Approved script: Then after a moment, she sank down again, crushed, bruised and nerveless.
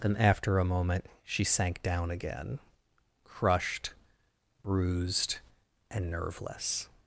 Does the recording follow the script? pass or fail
pass